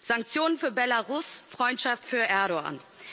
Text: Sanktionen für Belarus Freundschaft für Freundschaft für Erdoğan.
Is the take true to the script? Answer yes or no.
no